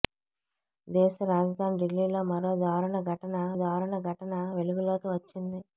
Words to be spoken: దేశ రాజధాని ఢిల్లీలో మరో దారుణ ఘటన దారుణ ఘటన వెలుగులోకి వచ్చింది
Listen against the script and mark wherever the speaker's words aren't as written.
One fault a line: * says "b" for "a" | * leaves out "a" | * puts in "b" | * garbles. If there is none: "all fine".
all fine